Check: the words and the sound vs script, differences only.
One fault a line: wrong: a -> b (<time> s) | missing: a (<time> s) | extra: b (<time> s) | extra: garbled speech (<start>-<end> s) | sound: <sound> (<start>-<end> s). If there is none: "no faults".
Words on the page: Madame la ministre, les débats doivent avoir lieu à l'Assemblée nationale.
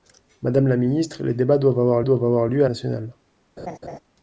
extra: doivent avoir (2.0 s)
missing: l'Assemblée (2.7 s)
sound: laugh (3.6-4.0 s)